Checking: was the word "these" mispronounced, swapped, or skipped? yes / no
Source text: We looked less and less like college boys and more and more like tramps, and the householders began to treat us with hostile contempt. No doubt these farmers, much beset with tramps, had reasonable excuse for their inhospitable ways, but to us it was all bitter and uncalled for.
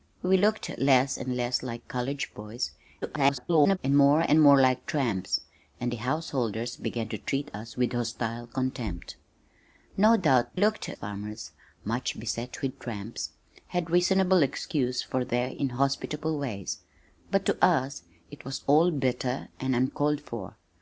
yes